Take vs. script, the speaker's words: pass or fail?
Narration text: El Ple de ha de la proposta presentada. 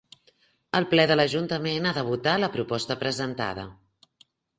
fail